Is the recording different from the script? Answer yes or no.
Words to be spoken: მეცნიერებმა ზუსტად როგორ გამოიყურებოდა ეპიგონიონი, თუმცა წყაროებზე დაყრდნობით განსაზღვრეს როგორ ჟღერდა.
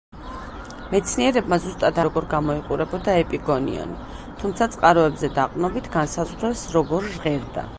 no